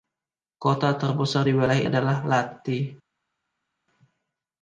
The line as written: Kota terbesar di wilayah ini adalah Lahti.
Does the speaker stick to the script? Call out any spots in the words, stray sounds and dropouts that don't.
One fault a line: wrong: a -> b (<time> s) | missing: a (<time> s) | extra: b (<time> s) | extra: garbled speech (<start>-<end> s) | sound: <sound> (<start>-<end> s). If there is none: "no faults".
missing: ini (1.8 s)